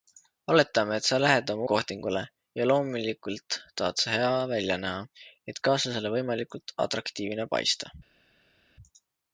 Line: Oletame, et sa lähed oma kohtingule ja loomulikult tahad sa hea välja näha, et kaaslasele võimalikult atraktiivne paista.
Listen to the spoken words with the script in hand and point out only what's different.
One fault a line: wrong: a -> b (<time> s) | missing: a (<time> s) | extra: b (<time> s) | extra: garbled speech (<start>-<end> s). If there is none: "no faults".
no faults